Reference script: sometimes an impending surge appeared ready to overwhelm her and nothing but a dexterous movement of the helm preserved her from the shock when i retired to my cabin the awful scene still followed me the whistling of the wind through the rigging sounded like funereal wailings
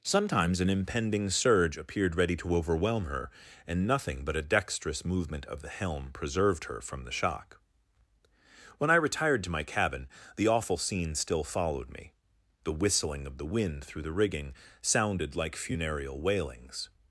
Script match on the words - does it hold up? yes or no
yes